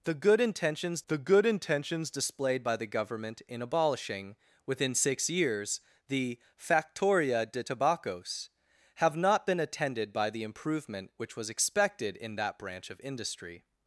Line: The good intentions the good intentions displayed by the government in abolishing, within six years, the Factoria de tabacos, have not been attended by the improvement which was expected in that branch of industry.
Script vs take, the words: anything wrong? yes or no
no